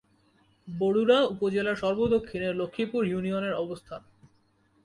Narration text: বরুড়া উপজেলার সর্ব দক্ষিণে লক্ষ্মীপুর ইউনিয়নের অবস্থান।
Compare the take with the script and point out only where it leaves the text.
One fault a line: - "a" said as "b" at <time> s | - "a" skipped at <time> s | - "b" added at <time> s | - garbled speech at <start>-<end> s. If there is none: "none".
none